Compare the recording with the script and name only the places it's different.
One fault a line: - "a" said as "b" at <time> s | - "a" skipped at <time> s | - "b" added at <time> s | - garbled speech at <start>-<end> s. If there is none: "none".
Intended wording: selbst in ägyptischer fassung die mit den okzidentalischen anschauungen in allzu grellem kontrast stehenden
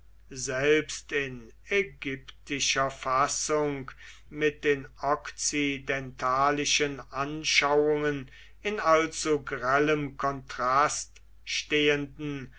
- "die" skipped at 3.9 s